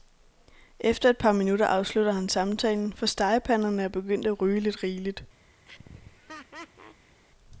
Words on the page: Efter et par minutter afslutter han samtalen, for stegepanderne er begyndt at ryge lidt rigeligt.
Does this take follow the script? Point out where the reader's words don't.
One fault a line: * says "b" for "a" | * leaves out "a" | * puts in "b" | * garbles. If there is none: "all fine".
all fine